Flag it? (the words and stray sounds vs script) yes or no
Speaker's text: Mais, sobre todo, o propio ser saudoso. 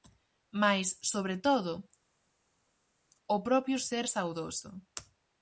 no